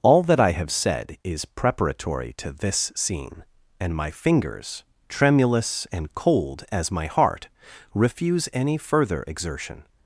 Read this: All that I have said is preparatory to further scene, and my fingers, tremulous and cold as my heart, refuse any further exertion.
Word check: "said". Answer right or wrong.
right